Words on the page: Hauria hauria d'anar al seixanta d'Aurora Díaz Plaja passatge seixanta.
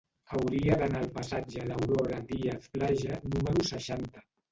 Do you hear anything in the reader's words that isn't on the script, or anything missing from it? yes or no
yes